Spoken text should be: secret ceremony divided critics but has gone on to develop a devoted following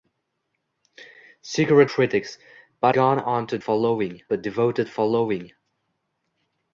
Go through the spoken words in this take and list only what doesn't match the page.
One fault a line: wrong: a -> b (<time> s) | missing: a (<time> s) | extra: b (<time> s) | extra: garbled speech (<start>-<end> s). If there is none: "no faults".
missing: ceremony divided (1.9 s)
missing: has (3.0 s)
wrong: develop -> following (3.6 s)